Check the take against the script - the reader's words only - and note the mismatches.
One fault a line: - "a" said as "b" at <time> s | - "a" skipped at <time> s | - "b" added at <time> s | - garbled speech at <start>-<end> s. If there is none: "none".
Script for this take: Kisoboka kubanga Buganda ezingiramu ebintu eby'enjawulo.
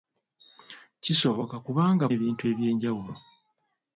- "Buganda ezingiramu" skipped at 2.0 s